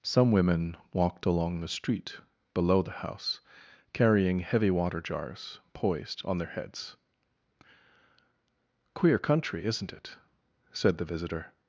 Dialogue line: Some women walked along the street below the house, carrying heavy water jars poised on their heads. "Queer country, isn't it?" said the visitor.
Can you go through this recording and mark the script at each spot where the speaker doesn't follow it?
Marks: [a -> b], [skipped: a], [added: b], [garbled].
Some women walked along the street below the house, carrying heavy water jars poised on their heads. "Queer country, isn't it?" said the visitor.